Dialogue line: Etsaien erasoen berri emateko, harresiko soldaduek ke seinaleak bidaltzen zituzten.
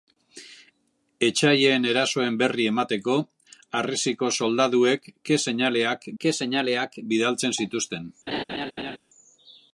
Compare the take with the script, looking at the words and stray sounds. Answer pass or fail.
fail